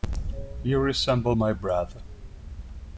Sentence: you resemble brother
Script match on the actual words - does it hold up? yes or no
no